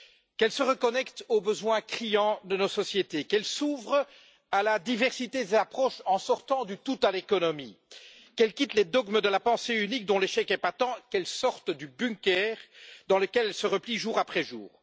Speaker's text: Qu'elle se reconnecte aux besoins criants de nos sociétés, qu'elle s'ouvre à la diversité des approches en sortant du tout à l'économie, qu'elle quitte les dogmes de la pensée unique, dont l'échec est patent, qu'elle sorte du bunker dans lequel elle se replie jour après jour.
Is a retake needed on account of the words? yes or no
no